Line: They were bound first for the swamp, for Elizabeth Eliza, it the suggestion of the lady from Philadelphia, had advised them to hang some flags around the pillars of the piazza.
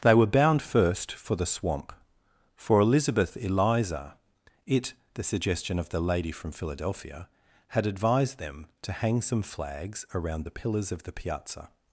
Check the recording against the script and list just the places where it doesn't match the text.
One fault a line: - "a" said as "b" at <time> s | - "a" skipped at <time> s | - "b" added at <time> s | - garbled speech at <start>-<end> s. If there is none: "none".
none